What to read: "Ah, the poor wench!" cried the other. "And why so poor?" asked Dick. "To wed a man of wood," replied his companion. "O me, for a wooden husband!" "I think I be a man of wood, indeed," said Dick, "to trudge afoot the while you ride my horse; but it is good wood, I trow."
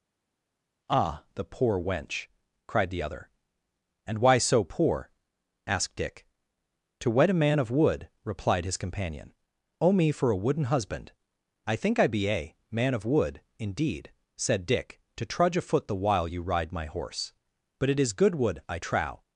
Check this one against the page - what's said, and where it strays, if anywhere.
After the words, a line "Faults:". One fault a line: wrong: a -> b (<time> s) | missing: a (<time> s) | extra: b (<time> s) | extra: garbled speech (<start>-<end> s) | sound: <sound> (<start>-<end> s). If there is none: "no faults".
"Ah, the poor wench!" cried the other. "And why so poor?" asked Dick. "To wed a man of wood," replied his companion. "O me, for a wooden husband!" "I think I be a man of wood, indeed," said Dick, "to trudge afoot the while you ride my horse; but it is good wood, I trow."
Faults:
no faults